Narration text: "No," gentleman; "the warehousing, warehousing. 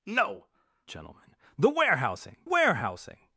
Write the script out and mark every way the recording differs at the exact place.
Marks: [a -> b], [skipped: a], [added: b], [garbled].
"No," gentleman; "the warehousing, warehousing.